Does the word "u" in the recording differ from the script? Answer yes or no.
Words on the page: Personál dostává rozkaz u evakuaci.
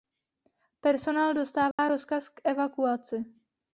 yes